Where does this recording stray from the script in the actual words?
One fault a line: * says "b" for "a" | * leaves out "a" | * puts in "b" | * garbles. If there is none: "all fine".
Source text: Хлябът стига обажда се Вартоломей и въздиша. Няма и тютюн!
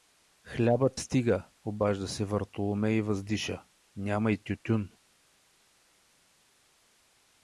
all fine